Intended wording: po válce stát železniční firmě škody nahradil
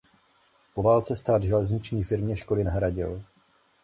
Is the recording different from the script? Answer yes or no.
no